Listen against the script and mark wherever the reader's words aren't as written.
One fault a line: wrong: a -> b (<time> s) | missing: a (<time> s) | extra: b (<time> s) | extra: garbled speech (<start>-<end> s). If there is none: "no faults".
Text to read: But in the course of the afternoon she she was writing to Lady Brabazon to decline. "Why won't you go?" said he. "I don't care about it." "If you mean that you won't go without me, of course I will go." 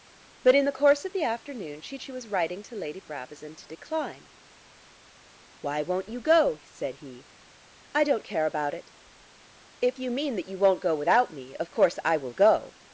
no faults